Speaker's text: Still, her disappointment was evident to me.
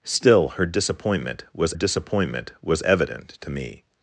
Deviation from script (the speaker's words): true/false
true